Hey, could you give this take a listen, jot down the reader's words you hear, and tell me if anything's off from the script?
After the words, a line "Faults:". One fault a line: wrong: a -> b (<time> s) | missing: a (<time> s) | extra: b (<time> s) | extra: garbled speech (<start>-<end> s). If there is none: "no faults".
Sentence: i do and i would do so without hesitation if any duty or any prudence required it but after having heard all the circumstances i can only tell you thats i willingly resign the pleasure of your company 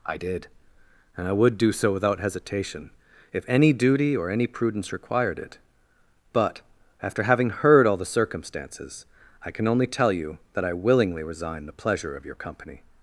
i did and i would do so without hesitation if any duty or any prudence required it but after having heard all the circumstances i can only tell you that i willingly resign the pleasure of your company
Faults:
wrong: do -> did (0.1 s)
wrong: thats -> that (10.5 s)